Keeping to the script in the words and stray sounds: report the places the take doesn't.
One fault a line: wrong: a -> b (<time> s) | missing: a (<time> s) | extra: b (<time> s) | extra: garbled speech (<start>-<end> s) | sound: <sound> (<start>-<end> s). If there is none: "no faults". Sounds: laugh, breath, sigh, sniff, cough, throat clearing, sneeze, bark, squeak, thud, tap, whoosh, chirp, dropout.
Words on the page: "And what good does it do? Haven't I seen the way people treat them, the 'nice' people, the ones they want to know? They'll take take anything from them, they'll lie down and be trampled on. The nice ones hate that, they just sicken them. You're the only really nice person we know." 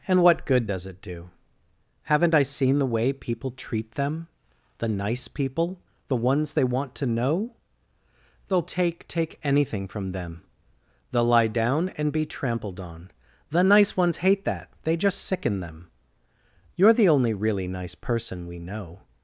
no faults